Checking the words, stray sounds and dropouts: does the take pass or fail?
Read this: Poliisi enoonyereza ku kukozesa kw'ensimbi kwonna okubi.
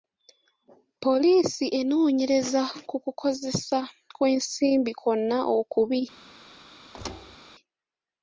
fail